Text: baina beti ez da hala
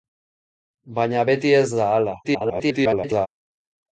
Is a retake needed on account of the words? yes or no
yes